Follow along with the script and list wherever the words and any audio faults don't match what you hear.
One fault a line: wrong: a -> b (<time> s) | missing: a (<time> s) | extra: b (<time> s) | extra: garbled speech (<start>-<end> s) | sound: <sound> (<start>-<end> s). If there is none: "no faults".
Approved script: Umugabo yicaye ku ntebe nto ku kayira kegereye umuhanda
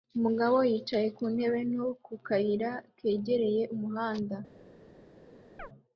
sound: chirp (5.6-5.7 s)